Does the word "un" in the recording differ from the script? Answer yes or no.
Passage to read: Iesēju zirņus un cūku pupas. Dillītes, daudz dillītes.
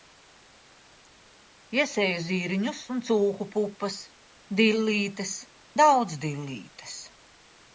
no